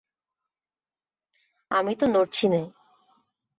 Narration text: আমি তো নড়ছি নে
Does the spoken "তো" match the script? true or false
true